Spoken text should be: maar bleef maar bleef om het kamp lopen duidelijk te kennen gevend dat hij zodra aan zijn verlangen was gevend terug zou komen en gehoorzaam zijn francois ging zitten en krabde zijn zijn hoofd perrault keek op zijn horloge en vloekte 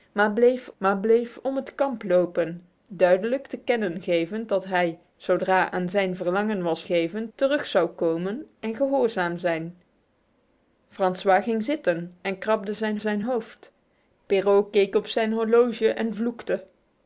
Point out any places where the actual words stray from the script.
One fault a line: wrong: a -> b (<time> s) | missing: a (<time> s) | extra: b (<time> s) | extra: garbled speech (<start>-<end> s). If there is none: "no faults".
no faults